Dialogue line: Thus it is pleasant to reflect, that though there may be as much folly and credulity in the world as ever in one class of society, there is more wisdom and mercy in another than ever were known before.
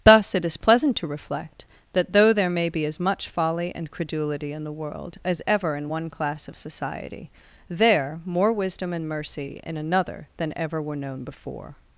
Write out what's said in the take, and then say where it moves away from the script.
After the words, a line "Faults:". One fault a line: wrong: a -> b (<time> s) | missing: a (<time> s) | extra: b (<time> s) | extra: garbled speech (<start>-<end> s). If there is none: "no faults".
Thus it is pleasant to reflect, that though there may be as much folly and credulity in the world as ever in one class of society, there more wisdom and mercy in another than ever were known before.
Faults:
missing: is (8.2 s)